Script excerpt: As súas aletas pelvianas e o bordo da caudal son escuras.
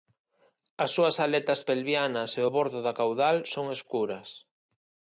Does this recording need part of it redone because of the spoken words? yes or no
no